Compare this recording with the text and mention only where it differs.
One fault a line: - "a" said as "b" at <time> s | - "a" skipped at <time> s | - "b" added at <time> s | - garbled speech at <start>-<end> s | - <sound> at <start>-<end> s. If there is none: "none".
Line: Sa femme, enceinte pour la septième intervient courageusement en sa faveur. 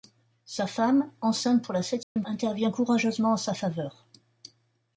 - dropout at 2.0-2.2 s